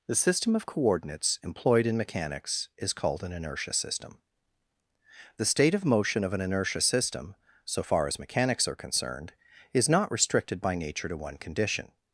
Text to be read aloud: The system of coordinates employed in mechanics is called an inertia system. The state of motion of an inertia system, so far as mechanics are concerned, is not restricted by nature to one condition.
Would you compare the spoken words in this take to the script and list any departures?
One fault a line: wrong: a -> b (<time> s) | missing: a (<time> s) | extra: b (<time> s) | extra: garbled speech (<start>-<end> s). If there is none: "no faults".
no faults